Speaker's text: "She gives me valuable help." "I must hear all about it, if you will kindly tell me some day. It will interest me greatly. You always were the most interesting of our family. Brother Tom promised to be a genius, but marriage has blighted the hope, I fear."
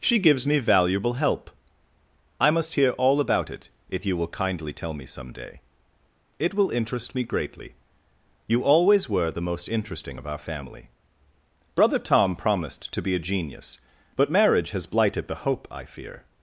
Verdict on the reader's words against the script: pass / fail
pass